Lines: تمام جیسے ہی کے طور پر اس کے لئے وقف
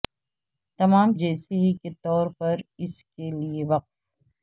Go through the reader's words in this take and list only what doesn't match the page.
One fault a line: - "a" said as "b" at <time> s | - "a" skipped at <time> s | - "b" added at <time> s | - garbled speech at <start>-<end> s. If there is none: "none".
none